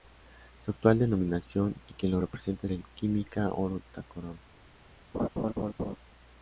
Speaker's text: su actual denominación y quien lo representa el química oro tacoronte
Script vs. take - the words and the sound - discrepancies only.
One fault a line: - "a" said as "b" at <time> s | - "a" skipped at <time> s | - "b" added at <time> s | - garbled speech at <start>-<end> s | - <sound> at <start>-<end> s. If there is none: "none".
- laugh at 5.1-6.0 s